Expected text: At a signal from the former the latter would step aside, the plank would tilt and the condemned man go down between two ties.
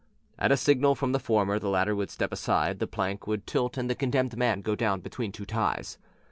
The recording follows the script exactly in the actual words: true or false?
true